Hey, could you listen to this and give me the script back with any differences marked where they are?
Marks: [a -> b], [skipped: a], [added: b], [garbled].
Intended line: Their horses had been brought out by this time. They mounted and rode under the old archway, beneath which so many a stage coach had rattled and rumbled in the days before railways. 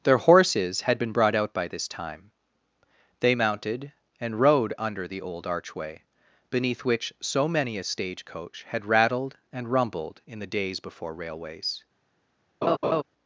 Their horses had been brought out by this time. They mounted and rode under the old archway, beneath which so many a stage coach had rattled and rumbled in the days before railways.